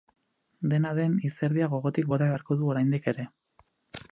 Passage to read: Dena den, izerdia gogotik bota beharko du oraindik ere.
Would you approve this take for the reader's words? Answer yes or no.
yes